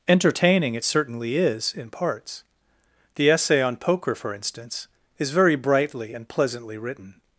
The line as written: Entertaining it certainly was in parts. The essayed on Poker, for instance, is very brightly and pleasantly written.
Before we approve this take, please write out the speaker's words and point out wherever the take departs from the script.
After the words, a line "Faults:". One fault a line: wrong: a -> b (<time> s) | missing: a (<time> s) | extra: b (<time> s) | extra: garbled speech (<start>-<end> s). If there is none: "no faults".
Entertaining it certainly is in parts. The essay on Poker, for instance, is very brightly and pleasantly written.
Faults:
wrong: was -> is (1.4 s)
wrong: essayed -> essay (3.3 s)